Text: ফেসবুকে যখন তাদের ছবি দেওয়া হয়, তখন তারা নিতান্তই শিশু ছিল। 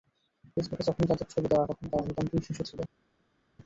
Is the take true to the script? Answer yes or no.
no